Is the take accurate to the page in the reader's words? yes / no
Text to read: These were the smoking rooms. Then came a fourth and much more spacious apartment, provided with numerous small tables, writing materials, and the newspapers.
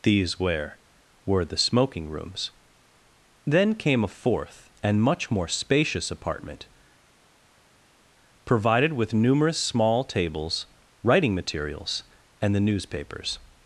no